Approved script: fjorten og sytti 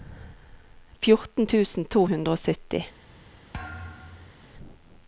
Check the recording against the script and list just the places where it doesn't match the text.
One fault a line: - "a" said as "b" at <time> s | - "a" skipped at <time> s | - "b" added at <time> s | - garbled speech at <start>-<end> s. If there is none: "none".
- "tusen to hundre" added at 1.5 s